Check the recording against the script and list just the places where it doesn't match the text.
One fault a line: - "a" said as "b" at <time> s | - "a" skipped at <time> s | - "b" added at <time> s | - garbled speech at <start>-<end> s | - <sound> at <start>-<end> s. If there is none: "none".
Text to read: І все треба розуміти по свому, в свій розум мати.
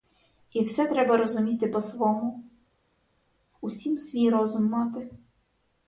- "усім" added at 3.6 s